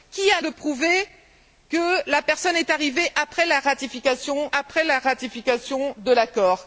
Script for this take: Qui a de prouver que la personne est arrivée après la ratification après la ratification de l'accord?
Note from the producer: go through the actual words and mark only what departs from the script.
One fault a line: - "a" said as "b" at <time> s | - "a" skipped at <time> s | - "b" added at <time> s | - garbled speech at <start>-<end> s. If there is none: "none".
none